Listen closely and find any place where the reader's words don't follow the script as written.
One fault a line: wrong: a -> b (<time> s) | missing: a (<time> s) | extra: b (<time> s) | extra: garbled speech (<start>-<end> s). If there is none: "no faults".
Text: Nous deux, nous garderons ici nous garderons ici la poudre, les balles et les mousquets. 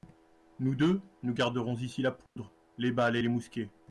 missing: nous garderons ici (2.0 s)